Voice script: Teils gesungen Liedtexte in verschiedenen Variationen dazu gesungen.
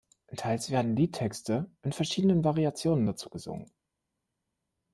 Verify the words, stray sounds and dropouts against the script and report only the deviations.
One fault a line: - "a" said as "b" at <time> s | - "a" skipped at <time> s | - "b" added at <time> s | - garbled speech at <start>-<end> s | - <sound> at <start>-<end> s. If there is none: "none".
- "gesungen" said as "werden" at 0.7 s